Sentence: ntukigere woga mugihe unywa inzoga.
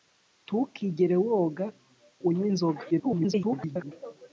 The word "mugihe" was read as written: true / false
false